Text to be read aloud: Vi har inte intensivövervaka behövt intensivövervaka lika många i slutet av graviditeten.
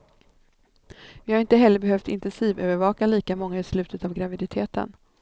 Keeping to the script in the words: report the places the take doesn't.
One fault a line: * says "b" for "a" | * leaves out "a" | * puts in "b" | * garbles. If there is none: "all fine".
* says "heller" for "intensivövervaka"